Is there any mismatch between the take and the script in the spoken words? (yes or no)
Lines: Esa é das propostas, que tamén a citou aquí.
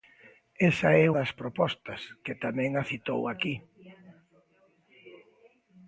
no